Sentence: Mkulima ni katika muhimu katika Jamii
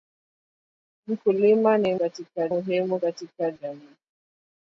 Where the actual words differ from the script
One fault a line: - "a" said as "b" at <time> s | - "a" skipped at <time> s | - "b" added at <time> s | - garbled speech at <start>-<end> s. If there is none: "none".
none